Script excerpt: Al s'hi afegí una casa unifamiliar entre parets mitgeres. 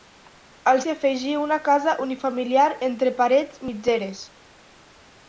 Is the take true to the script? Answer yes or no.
yes